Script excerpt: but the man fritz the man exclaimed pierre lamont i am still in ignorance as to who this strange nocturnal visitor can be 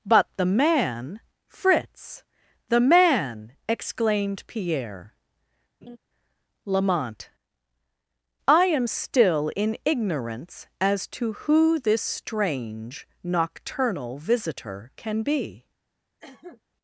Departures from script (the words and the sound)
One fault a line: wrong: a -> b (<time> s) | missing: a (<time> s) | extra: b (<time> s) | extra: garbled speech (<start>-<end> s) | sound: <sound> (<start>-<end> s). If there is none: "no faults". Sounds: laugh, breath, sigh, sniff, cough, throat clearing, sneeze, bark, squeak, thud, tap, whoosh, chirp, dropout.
sound: laugh (5.8-6.0 s)
sound: cough (16.2-16.6 s)